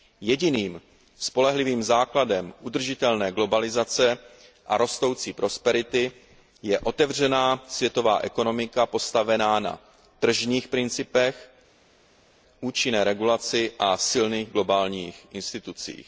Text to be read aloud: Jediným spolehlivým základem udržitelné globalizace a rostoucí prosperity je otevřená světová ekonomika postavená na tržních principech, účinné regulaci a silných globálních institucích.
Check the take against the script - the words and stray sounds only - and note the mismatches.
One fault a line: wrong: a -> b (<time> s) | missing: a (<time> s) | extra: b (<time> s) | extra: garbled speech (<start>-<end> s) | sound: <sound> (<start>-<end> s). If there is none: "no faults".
no faults